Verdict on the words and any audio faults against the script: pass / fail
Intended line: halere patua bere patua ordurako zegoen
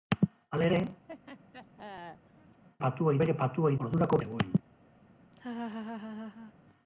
fail